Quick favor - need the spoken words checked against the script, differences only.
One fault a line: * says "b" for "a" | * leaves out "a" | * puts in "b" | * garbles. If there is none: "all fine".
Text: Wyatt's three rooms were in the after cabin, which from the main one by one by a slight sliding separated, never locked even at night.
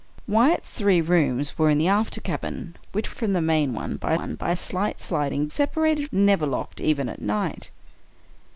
all fine